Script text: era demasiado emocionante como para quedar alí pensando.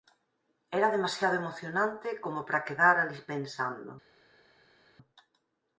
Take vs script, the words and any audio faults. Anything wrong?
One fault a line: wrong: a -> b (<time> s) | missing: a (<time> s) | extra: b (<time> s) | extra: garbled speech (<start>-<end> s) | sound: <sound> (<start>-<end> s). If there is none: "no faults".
no faults